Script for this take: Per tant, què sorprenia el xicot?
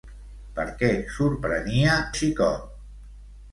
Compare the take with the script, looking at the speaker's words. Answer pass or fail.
fail